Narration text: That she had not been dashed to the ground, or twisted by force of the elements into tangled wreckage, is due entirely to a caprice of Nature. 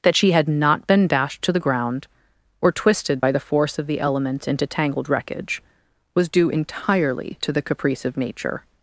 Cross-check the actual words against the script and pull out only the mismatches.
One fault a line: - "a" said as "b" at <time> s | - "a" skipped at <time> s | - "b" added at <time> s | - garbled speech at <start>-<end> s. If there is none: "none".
- "the" added at 3.3 s
- "is" said as "was" at 6.1 s
- "a" said as "the" at 7.5 s